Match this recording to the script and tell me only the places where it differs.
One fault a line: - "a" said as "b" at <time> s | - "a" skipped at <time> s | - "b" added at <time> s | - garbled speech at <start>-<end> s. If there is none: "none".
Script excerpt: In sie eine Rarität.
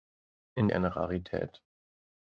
none